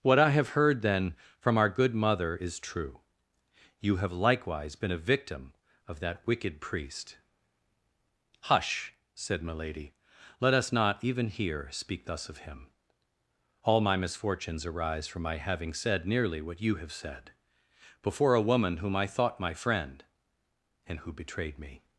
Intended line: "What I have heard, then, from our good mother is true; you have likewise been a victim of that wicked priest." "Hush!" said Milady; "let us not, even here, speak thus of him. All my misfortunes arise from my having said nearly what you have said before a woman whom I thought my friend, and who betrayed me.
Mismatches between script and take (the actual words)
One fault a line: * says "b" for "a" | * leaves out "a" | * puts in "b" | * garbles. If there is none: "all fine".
all fine